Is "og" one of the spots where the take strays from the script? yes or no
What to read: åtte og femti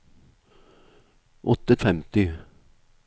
no